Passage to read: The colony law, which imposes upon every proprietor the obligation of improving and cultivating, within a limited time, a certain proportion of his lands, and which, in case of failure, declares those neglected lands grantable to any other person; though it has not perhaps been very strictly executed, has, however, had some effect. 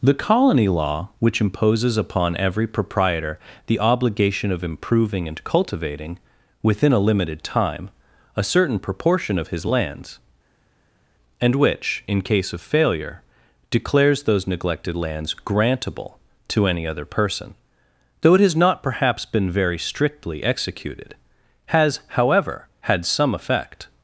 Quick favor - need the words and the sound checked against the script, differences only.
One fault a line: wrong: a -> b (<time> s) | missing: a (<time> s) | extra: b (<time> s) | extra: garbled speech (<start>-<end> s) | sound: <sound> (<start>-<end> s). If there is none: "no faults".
no faults